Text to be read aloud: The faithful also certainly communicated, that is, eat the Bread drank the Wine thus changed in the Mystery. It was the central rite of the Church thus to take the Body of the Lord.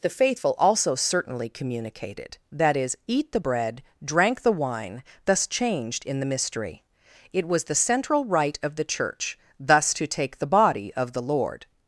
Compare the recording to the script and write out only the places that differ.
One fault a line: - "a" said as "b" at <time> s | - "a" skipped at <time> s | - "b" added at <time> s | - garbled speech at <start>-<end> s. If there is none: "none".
none